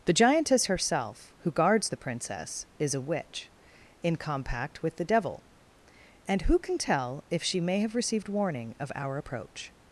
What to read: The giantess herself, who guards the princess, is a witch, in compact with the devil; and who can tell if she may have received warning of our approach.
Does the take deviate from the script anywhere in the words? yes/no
no